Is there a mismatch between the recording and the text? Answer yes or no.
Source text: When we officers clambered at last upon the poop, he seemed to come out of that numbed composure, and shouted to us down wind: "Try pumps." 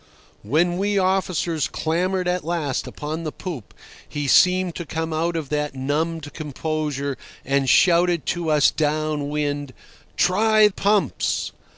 no